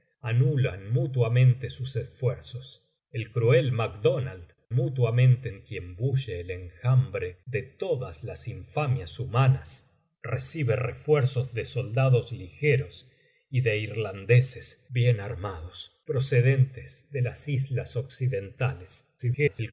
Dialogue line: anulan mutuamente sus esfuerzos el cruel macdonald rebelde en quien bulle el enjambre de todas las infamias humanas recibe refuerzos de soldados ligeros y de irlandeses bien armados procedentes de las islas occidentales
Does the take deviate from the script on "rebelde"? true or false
true